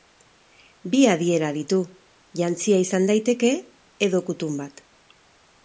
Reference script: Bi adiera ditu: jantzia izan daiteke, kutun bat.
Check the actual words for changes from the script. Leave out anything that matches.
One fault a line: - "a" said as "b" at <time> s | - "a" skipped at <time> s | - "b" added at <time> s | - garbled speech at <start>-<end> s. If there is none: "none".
- "edo" added at 4.1 s